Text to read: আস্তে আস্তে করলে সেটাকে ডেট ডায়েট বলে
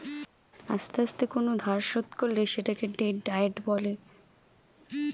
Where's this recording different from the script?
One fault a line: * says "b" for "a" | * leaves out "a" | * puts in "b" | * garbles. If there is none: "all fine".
* puts in "কোন ধার শোধ"